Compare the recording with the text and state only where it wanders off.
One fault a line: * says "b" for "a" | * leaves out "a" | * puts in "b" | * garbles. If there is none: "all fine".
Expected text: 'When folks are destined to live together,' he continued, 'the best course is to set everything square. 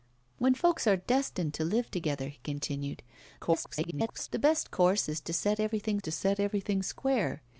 * garbles
* puts in "to set everything"